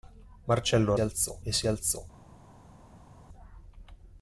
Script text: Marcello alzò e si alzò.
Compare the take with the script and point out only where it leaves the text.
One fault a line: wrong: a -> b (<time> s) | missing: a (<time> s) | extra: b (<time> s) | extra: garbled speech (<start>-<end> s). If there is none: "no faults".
no faults